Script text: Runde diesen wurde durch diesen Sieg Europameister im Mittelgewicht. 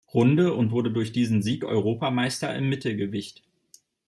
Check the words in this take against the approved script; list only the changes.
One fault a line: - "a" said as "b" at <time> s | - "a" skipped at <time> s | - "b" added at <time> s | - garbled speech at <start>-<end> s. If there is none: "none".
- "diesen" said as "und" at 0.5 s